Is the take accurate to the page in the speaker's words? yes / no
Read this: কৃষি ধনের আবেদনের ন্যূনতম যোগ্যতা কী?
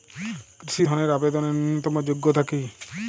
yes